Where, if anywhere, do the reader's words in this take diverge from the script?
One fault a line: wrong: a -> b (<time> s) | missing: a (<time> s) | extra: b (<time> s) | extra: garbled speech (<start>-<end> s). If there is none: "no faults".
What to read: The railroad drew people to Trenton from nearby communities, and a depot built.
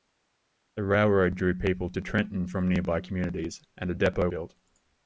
no faults